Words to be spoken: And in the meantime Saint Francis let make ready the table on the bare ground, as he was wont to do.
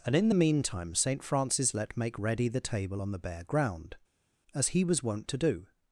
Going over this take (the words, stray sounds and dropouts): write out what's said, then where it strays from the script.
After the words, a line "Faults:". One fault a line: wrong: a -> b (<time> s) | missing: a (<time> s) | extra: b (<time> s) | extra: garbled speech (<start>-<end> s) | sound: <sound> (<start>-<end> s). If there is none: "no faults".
And in the meantime Saint Francis let make ready the table on the bare ground, as he was wont to do.
Faults:
no faults